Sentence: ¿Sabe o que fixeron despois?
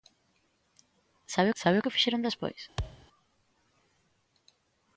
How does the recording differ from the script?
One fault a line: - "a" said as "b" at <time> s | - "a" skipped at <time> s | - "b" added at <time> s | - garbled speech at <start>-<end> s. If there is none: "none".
- "sabe" added at 1.6 s